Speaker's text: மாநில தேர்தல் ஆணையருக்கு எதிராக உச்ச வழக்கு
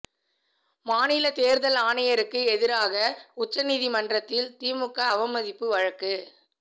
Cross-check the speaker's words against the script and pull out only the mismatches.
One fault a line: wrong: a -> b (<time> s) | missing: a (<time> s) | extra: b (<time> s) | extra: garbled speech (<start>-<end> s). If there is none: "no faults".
extra: நீதிமன்றத்தில் திமுக அவமதிப்பு (3.6 s)